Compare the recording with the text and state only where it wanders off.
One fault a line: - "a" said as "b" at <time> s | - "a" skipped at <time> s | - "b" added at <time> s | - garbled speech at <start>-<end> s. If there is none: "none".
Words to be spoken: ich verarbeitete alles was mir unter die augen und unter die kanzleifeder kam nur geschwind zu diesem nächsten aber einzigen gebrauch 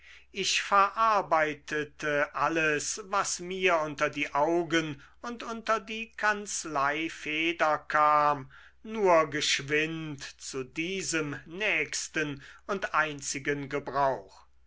- "aber" said as "und" at 12.7 s